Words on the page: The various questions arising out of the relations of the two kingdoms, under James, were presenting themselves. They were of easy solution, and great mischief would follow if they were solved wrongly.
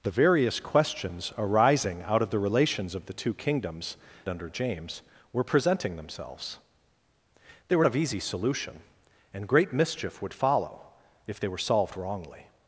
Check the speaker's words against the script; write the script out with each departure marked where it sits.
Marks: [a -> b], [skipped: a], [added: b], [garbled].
The various questions arising out of the relations of the two kingdoms, under James, were presenting themselves. They were of easy solution, and great mischief would follow if they were solved wrongly.